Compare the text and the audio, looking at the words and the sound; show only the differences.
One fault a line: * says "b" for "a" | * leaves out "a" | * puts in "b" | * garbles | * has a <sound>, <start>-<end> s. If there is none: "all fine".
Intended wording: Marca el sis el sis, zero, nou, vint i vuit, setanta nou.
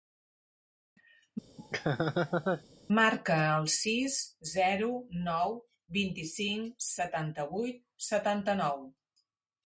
* has a laugh, 1.6-2.6 s
* leaves out "el sis"
* puts in "cinc setanta"